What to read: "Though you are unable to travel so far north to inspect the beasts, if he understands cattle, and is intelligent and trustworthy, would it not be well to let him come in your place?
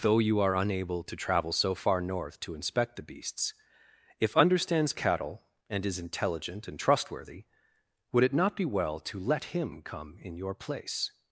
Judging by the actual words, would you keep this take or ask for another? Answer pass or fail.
fail